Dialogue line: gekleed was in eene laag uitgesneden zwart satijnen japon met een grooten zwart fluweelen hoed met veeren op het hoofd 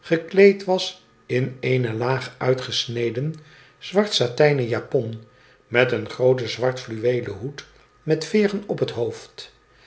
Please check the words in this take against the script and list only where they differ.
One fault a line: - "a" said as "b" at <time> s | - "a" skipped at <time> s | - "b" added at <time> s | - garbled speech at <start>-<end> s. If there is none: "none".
none